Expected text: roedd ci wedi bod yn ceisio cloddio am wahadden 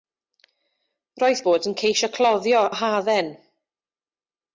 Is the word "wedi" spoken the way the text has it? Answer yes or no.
no